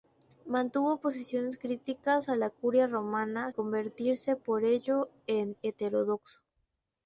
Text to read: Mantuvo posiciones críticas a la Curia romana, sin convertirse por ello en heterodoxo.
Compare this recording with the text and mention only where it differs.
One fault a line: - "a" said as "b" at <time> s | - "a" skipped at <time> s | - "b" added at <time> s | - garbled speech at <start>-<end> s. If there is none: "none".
- "sin" skipped at 3.5 s